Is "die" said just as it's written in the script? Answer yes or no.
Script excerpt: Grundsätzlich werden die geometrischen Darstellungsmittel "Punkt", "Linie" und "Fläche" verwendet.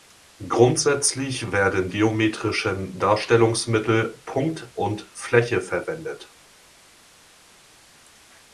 no